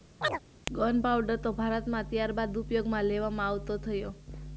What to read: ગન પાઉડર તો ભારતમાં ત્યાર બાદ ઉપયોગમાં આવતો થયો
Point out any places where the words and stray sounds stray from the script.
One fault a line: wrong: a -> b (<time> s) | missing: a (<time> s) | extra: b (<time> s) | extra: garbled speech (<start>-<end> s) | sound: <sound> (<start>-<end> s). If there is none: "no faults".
sound: chirp (0.2-0.4 s)
extra: લેવામાં (3.1 s)